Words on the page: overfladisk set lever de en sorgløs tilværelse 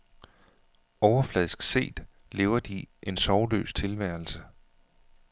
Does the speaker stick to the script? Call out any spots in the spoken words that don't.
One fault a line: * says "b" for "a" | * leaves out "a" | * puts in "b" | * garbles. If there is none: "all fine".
all fine